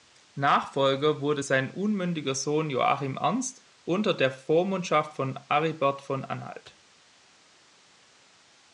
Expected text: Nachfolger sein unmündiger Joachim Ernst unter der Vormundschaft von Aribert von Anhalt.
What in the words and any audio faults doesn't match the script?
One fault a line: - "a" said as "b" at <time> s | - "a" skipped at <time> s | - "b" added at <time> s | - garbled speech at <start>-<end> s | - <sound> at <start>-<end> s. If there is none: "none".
- "wurde" added at 1.2 s
- "Sohn" added at 2.3 s